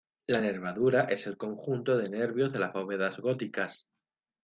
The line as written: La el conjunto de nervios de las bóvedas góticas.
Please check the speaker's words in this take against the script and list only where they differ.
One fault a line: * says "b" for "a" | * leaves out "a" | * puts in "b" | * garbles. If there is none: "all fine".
* puts in "nervadura es"